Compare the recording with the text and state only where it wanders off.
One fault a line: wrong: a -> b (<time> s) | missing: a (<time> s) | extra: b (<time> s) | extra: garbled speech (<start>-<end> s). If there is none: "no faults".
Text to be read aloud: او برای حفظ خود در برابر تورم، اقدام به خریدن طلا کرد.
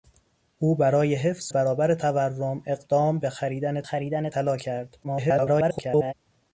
missing: خود در (1.5 s)
extra: خریدن (3.8 s)
extra: garbled speech (5.0-6.1 s)